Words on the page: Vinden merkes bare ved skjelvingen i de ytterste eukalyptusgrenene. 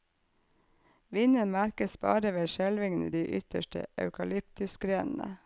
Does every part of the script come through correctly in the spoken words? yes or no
yes